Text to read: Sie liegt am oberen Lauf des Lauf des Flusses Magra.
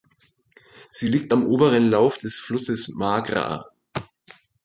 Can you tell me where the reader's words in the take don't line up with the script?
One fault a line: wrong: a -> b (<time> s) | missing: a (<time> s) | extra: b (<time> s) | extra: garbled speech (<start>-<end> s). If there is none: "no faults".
missing: Lauf des (2.4 s)